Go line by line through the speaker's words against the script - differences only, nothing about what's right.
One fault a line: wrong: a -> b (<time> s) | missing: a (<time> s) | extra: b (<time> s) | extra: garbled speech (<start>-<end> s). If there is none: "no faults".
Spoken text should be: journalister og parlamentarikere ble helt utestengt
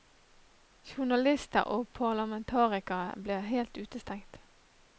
no faults